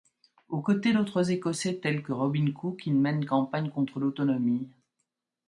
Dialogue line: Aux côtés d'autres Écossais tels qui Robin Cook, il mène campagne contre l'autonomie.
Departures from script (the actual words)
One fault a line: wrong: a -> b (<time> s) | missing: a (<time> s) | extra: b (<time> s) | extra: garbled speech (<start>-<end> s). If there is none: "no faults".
wrong: qui -> que (2.0 s)